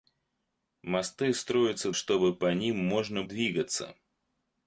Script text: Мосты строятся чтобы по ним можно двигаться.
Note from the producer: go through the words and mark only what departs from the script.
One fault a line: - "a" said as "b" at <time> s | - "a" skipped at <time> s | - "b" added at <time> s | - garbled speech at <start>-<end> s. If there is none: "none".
none